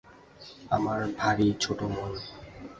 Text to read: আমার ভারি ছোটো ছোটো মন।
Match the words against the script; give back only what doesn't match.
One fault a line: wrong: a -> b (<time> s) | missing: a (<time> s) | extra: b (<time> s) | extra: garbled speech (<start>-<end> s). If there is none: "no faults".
missing: ছোটো (1.9 s)